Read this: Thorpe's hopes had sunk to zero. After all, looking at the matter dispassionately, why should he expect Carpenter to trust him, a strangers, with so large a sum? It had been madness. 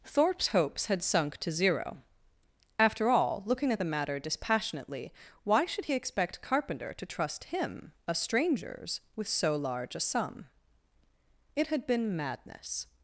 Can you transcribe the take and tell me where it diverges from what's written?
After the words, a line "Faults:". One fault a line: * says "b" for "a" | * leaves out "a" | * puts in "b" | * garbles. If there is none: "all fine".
Thorpe's hopes had sunk to zero. After all, looking at the matter dispassionately, why should he expect Carpenter to trust him, a strangers, with so large a sum? It had been madness.
Faults:
all fine